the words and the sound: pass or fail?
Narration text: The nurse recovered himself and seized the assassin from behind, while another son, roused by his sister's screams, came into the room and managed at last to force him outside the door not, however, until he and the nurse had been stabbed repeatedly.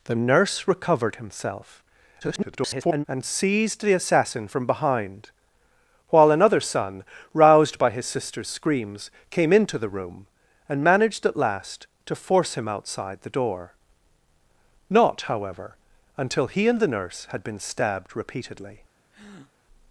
fail